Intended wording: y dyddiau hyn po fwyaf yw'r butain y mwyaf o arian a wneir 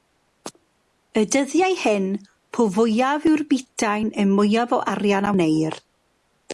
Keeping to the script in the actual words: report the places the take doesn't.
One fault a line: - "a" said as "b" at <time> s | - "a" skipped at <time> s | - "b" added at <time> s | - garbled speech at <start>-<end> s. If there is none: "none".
none